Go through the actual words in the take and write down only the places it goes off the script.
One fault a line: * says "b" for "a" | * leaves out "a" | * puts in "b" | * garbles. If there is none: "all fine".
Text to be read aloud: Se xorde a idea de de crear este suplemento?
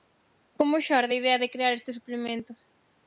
* says "Como" for "Se"
* leaves out "de"